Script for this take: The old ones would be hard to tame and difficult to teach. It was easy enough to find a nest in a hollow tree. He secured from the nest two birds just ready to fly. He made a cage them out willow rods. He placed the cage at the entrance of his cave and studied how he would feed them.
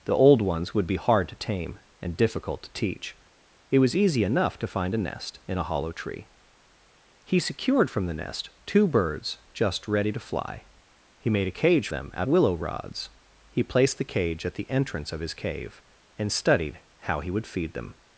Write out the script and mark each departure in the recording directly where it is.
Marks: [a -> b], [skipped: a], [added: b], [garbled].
The old ones would be hard to tame and difficult to teach. It was easy enough to find a nest in a hollow tree. He secured from the nest two birds just ready to fly. He made a cage them out willow rods. He placed the cage at the entrance of his cave and studied how he would feed them.